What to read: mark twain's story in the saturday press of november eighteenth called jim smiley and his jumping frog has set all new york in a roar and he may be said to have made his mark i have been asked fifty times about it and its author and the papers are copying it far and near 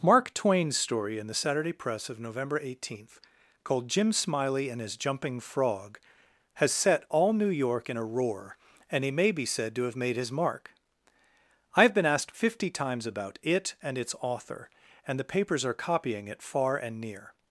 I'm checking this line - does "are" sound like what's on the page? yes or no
yes